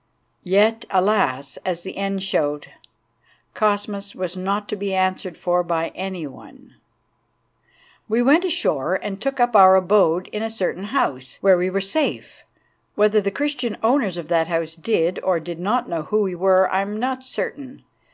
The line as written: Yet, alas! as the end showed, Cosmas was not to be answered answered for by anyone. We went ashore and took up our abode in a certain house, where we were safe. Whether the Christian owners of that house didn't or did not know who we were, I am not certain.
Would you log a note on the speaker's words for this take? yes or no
yes